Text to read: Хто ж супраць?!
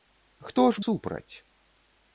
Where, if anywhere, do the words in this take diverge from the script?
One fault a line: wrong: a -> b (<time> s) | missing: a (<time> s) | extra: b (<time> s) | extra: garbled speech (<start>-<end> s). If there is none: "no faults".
no faults